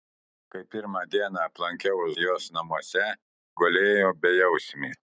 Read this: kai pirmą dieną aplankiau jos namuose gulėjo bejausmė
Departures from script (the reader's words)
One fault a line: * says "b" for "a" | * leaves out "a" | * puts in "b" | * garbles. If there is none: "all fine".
all fine